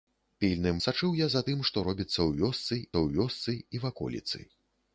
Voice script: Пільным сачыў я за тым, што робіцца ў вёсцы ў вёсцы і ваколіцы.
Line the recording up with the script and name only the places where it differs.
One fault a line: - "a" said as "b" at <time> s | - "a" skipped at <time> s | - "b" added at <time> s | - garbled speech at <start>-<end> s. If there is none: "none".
none